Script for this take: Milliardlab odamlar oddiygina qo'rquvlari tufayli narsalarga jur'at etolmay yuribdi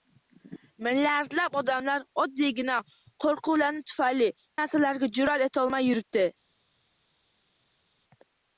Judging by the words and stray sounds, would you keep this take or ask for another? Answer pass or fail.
pass